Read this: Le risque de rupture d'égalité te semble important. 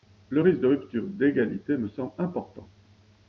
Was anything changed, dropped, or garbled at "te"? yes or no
yes